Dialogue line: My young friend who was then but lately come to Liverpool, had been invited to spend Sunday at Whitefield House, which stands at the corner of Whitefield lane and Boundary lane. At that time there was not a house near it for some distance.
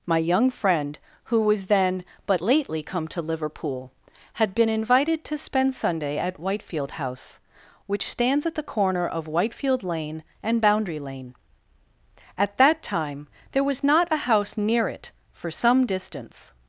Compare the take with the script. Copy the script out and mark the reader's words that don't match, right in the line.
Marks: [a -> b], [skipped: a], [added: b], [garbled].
My young friend who was then but lately come to Liverpool, had been invited to spend Sunday at Whitefield House, which stands at the corner of Whitefield lane and Boundary lane. At that time there was not a house near it for some distance.